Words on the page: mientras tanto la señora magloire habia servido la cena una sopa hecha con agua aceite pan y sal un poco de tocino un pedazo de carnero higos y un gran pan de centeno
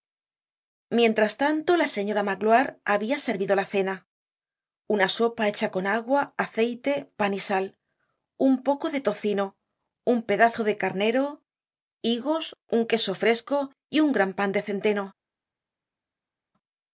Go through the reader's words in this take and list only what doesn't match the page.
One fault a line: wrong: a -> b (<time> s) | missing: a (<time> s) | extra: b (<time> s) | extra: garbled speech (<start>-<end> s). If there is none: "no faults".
extra: un queso fresco (12.7 s)